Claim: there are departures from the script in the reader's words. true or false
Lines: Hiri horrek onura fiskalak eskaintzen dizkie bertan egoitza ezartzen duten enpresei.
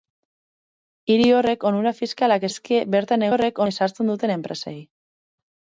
true